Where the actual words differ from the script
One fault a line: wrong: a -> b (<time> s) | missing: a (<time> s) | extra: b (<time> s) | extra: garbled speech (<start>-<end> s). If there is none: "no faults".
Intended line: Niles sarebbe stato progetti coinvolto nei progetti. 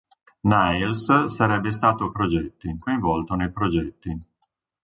no faults